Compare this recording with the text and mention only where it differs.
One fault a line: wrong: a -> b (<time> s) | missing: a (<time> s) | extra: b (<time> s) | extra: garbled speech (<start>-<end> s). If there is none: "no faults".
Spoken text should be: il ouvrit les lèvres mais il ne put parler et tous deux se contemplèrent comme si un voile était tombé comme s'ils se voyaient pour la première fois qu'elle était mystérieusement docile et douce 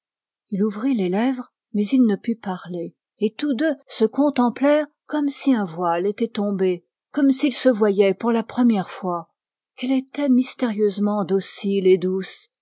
no faults